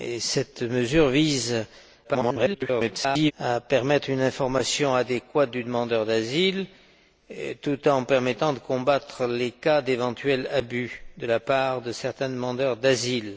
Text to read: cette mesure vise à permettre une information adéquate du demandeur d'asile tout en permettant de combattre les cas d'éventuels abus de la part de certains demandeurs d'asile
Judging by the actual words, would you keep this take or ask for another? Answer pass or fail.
fail